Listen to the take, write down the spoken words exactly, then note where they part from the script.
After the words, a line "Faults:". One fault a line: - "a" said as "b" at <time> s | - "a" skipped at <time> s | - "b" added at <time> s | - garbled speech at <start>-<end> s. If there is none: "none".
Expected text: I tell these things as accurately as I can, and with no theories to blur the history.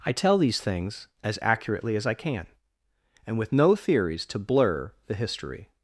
I tell these things as accurately as I can, and with no theories to blur the history.
Faults:
none